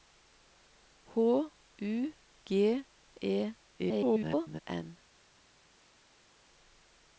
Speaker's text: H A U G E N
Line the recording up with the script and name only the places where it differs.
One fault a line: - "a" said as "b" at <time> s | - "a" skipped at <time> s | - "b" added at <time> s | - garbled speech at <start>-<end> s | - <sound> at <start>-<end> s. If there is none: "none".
- "A" skipped at 1.5 s
- garbled speech at 3.8-4.6 s